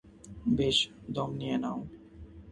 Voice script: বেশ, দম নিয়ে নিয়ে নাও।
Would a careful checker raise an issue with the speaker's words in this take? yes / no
yes